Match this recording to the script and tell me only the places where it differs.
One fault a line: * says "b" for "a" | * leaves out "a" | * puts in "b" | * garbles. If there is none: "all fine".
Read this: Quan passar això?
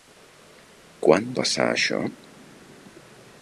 all fine